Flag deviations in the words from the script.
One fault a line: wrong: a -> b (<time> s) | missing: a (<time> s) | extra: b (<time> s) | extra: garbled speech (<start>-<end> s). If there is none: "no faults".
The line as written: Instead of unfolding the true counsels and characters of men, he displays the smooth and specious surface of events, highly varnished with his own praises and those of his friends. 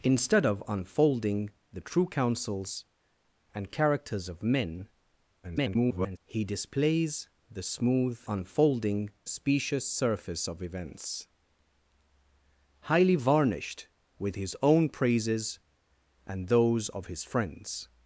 extra: garbled speech (5.4-6.2 s)
wrong: and -> unfolding (8.3 s)